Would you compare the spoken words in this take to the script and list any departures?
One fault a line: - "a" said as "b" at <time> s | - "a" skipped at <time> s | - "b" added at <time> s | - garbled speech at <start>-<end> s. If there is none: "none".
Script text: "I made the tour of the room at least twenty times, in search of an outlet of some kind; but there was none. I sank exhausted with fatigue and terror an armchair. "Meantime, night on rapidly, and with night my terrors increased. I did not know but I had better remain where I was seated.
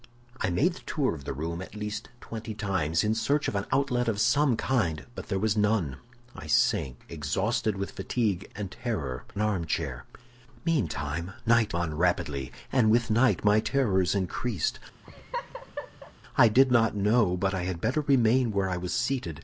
none